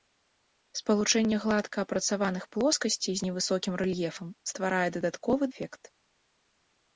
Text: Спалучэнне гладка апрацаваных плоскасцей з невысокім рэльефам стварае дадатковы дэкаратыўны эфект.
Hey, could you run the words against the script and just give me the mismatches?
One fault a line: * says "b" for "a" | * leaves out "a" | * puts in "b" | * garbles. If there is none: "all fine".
* leaves out "дэкаратыўны"